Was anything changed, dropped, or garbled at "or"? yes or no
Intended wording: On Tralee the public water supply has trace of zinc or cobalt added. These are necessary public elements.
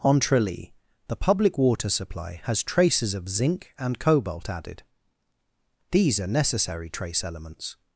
yes